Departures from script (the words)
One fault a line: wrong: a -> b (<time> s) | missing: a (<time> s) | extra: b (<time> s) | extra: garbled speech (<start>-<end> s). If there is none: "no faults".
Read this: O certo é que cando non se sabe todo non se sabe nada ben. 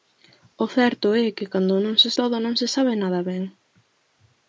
missing: sabe (2.1 s)